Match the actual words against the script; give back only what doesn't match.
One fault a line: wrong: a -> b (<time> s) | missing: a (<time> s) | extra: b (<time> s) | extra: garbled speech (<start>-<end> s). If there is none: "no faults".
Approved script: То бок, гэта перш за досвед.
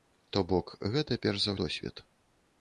no faults